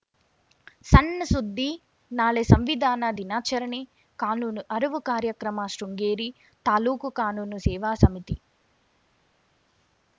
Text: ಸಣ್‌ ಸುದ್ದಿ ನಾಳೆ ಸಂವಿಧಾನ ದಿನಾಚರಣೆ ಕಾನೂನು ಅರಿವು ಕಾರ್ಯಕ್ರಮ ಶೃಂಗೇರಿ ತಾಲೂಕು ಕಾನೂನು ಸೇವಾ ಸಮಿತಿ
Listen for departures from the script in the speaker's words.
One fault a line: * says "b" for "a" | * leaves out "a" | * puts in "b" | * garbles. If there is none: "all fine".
all fine